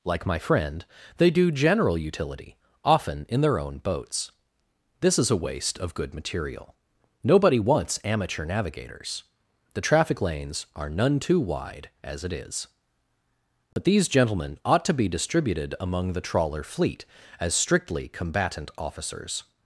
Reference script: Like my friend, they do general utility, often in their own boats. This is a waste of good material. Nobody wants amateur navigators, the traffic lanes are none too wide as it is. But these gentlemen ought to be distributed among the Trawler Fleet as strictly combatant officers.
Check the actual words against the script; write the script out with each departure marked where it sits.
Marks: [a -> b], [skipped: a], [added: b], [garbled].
Like my friend, they do general utility, often in their own boats. This is a waste of good material. Nobody wants amateur navigators, the traffic lanes are none too wide as it is. But these gentlemen ought to be distributed among the Trawler Fleet as strictly combatant officers.